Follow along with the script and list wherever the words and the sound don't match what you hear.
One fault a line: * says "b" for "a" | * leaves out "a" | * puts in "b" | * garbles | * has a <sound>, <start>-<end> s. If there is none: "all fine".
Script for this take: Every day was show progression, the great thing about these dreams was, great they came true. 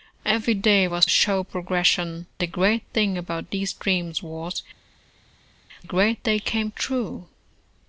all fine